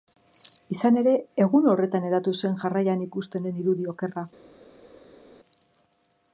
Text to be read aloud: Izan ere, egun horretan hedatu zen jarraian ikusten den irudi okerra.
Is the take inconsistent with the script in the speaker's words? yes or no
no